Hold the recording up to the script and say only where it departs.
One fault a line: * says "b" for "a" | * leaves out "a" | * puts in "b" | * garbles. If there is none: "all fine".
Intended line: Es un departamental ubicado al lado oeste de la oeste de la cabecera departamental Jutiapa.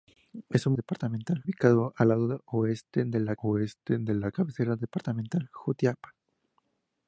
all fine